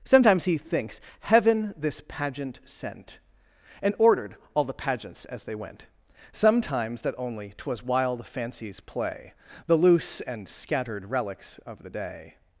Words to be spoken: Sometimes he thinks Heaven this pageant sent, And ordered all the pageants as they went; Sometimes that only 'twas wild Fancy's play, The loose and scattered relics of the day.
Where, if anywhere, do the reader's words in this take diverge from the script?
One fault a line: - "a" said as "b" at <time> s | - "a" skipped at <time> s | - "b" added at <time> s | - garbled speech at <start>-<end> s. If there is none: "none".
none